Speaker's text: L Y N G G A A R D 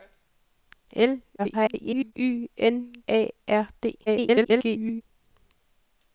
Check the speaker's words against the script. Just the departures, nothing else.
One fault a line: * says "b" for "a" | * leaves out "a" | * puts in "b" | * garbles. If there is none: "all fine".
* garbles
* leaves out "G G A"
* garbles